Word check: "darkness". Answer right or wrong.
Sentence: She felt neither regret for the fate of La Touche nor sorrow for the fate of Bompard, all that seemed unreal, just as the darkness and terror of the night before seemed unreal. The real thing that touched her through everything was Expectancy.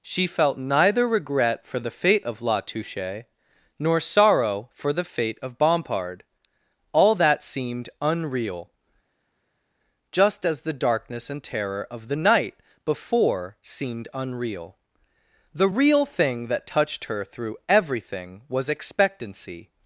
right